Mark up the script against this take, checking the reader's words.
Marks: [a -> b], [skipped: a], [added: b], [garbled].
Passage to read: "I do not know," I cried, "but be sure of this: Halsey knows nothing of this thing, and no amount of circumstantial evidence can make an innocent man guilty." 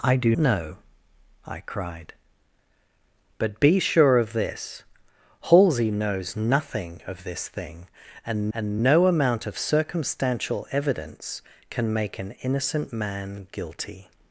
"I do [skipped: not] know," I cried, "but be sure of this: Halsey knows nothing of this thing, and [added: and] no amount of circumstantial evidence can make an innocent man guilty."